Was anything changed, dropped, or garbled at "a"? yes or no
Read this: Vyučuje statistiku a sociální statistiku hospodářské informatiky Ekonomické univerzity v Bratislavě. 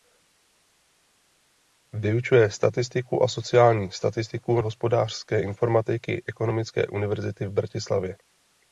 no